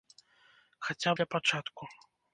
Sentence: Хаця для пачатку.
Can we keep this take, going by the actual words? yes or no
yes